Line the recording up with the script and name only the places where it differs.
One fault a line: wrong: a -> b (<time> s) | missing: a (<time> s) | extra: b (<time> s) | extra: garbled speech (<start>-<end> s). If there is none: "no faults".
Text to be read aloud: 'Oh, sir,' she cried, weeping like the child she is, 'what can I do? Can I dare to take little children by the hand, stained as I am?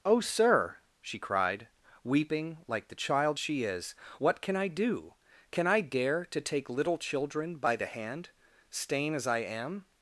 wrong: stained -> stain (8.7 s)